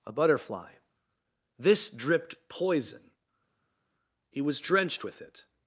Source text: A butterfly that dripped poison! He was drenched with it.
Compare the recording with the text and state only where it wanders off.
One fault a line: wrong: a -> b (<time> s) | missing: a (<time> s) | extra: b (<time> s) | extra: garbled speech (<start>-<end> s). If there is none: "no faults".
wrong: that -> this (1.6 s)